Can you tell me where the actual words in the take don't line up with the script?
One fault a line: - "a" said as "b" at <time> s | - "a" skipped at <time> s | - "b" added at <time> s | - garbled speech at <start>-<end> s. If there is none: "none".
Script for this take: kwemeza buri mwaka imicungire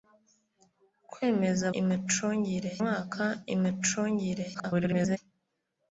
- "buri" said as "imicungire" at 1.8 s
- garbled speech at 4.5-5.2 s